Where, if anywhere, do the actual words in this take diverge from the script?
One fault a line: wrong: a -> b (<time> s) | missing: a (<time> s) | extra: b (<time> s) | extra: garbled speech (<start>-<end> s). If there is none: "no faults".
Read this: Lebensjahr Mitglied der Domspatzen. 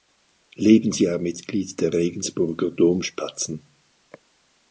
extra: Regensburger (1.9 s)